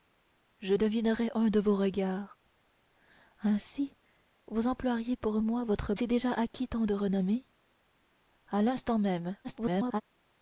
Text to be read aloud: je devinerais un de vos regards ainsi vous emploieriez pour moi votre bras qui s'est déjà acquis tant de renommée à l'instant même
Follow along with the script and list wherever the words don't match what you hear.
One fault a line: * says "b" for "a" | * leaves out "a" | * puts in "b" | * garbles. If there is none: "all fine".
* leaves out "bras qui"
* garbles